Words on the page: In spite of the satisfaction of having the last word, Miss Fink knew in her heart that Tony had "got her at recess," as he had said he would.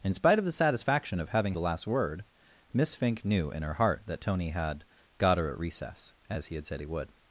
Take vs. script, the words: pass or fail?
pass